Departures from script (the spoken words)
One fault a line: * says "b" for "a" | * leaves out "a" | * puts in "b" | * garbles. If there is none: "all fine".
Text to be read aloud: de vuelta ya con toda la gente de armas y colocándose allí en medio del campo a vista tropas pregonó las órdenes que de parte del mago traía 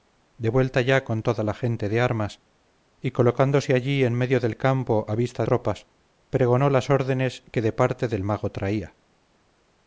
all fine